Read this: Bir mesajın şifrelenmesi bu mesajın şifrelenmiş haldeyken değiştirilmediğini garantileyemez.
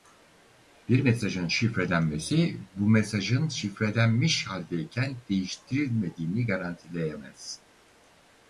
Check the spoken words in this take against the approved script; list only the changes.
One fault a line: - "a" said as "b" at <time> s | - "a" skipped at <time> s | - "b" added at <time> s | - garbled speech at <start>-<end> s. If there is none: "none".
none